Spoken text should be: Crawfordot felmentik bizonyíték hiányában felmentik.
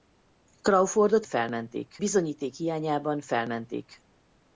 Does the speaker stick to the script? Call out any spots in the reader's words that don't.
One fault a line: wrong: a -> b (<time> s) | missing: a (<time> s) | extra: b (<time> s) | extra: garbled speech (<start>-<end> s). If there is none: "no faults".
no faults